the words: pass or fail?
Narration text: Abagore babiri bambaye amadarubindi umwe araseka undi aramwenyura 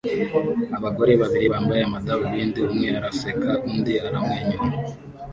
pass